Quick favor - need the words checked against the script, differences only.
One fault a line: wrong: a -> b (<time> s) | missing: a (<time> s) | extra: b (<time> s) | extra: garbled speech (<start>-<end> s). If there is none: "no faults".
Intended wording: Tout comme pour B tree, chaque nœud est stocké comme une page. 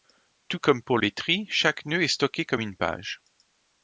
no faults